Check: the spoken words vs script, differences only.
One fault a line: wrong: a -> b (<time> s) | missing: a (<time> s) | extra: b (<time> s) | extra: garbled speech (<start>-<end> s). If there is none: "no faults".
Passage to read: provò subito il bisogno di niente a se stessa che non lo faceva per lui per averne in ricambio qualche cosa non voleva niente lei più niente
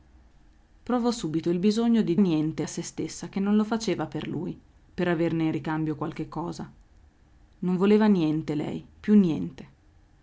no faults